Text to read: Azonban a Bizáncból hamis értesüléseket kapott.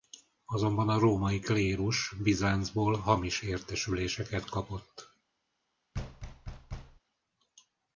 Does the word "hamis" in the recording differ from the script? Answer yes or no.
no